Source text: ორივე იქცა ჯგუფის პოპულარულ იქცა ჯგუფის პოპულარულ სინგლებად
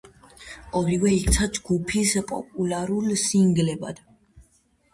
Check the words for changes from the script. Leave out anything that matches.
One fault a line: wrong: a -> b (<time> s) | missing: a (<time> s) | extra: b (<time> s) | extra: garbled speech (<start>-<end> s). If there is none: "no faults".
missing: იქცა ჯგუფის პოპულარულ (3.1 s)